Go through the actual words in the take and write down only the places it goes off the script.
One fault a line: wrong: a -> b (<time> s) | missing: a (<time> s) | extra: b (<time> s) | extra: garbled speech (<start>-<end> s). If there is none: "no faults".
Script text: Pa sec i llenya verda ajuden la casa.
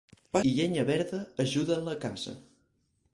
missing: sec (0.4 s)